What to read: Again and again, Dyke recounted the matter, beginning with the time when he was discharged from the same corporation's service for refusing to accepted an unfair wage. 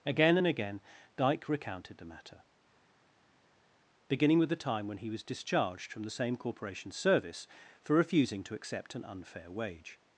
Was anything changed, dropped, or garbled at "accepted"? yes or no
yes